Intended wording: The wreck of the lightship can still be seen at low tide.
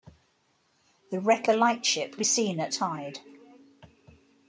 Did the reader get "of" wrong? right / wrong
wrong